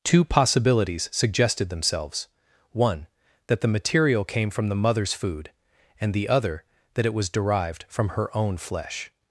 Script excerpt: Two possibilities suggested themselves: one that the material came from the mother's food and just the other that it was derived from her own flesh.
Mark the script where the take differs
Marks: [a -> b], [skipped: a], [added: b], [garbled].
Two possibilities suggested themselves: one that the material came from the mother's food and [skipped: just] the other that it was derived from her own flesh.